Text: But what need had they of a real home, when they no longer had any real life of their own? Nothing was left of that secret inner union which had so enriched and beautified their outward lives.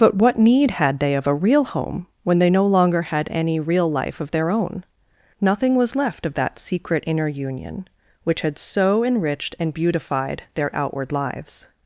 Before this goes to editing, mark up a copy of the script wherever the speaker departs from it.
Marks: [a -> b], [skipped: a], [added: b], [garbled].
But what need had they of a real home, when they no longer had any real life of their own? Nothing was left of that secret inner union which had so enriched and beautified their outward lives.